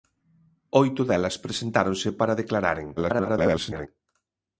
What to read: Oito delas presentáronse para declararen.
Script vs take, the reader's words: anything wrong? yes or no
yes